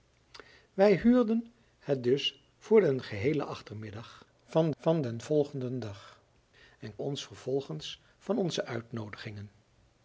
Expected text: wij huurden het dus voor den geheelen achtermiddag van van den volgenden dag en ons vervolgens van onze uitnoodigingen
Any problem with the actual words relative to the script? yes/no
no